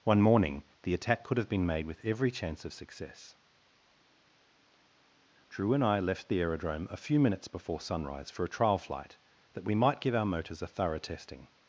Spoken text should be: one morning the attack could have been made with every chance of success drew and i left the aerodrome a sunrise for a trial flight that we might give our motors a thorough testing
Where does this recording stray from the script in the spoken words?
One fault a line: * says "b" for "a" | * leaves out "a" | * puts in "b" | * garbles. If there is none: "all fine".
* puts in "few minutes before"